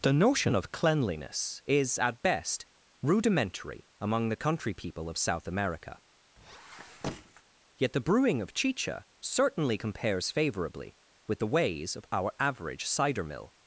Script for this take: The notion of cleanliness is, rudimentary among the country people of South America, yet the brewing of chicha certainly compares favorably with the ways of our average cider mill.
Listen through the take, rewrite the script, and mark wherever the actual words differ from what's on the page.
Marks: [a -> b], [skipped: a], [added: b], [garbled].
The notion of cleanliness is, [added: at best] rudimentary among the country people of South America, yet the brewing of chicha certainly compares favorably with the ways of our average cider mill.